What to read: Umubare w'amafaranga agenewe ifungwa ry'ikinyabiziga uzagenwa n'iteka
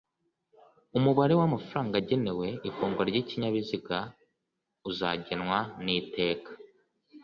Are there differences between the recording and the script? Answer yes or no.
no